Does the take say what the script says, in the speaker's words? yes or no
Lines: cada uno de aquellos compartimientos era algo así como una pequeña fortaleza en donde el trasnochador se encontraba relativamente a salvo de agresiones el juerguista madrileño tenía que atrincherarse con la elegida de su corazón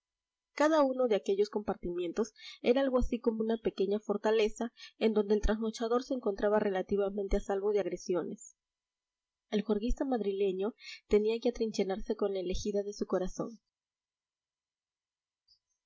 yes